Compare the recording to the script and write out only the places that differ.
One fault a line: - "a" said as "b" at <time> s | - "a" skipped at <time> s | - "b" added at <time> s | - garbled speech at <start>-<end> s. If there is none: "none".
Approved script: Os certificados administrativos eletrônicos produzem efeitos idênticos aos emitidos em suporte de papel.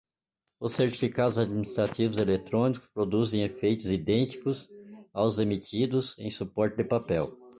none